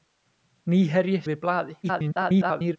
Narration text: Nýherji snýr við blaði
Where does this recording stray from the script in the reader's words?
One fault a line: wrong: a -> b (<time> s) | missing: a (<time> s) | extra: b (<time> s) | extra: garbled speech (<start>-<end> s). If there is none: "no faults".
missing: snýr (1.2 s)
extra: garbled speech (1.8-2.8 s)